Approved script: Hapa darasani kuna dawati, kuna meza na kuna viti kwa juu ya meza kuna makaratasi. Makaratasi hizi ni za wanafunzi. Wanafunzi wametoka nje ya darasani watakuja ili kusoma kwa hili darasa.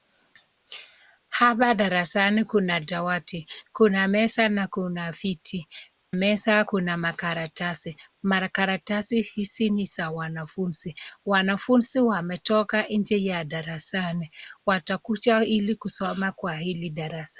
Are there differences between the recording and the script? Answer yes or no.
yes